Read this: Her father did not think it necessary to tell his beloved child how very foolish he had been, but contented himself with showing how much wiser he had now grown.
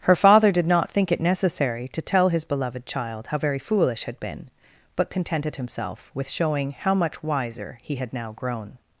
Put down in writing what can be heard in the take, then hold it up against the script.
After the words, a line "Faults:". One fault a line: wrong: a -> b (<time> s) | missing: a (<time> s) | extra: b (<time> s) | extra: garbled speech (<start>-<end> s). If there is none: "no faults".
Her father did not think it necessary to tell his beloved child how very foolish had been, but contented himself with showing how much wiser he had now grown.
Faults:
missing: he (4.0 s)